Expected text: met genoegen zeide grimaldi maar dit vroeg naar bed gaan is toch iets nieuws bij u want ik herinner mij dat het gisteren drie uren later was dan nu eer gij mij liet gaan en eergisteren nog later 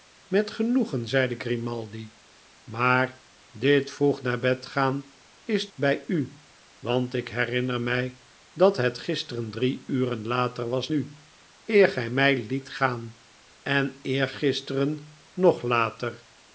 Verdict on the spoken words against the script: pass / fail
fail